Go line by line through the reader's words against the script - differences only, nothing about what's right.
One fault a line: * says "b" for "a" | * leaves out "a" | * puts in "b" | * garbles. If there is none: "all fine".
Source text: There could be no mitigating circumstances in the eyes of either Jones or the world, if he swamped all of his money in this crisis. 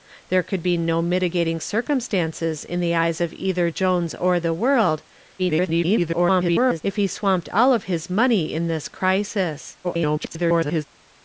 * garbles
* garbles